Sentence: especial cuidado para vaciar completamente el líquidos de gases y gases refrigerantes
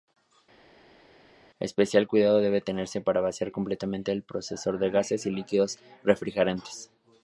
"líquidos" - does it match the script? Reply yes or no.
no